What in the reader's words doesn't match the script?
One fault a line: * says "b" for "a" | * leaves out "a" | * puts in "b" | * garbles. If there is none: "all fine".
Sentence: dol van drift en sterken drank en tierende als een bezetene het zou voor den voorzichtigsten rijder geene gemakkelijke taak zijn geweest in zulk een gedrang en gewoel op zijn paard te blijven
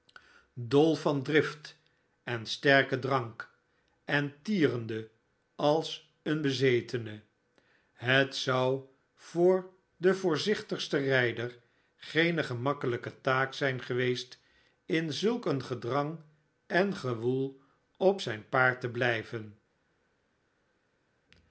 all fine